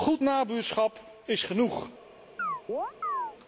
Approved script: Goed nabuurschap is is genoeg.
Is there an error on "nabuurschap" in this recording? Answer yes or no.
no